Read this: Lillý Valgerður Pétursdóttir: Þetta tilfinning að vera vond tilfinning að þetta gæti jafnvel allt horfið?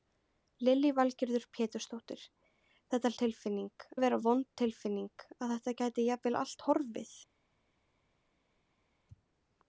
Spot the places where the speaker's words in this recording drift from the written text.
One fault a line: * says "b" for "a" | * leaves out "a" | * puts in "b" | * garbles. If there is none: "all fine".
all fine